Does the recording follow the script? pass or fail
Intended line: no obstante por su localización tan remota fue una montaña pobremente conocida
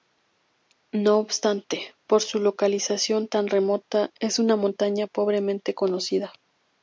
fail